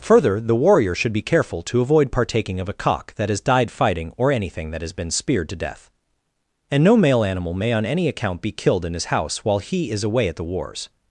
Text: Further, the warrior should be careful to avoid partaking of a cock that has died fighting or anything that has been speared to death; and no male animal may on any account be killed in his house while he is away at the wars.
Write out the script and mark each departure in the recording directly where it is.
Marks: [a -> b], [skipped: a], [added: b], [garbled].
Further, the warrior should be careful to avoid partaking of a cock that has died fighting or anything that has been speared to death; and no male animal may on any account be killed in his house while he is away at the wars.